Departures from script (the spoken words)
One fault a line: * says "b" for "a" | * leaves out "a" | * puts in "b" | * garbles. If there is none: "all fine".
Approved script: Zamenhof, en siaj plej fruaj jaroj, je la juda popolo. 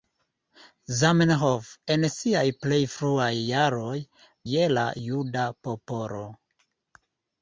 all fine